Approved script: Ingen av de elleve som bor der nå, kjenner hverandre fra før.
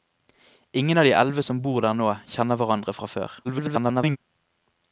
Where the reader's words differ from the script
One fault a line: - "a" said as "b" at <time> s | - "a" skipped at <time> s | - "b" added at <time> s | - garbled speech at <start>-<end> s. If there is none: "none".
- garbled speech at 3.4-4.2 s